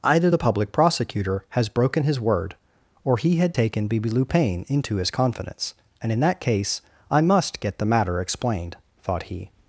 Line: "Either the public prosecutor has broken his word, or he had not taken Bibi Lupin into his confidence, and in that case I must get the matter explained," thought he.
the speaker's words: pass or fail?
fail